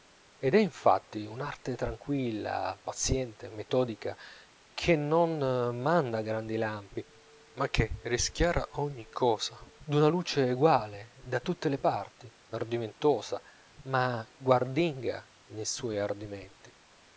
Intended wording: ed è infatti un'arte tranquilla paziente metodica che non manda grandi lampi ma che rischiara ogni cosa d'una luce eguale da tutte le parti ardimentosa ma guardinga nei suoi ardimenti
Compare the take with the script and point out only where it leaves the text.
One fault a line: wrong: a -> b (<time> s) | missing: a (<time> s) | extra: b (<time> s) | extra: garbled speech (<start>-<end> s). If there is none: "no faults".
no faults